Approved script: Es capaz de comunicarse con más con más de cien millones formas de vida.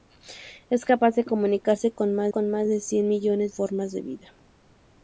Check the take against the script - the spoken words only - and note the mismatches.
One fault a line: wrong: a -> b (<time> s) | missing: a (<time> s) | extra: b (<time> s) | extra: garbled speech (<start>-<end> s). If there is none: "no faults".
no faults